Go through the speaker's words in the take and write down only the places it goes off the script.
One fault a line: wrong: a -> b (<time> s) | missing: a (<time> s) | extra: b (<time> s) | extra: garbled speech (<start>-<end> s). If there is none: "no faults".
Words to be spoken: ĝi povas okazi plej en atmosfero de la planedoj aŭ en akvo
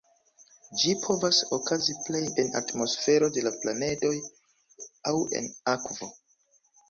no faults